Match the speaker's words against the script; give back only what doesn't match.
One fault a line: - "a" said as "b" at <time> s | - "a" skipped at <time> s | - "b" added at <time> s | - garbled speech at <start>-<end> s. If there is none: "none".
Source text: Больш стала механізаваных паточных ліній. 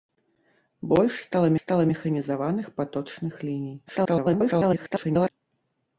- "стала" added at 1.6 s
- garbled speech at 3.9-5.3 s